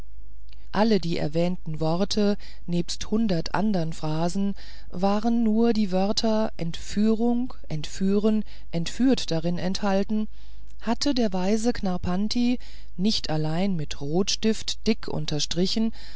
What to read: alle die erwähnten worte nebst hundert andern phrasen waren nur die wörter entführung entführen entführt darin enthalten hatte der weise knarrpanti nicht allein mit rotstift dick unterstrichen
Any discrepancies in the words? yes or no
no